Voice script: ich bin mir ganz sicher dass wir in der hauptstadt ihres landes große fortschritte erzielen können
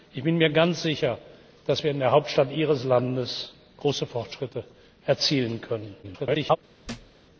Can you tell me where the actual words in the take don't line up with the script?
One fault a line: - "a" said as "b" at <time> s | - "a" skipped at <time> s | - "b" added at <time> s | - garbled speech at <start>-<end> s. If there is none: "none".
- garbled speech at 6.0-6.6 s